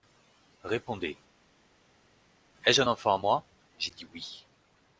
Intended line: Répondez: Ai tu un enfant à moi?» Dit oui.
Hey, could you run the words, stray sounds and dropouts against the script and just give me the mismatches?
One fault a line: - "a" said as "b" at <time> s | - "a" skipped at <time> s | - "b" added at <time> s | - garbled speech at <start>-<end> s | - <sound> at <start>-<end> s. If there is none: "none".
- "tu" said as "je" at 2.7 s
- "J'ai" added at 3.8 s